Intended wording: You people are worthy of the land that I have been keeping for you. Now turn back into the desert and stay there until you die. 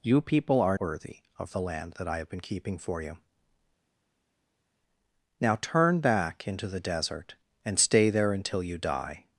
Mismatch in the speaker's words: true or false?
false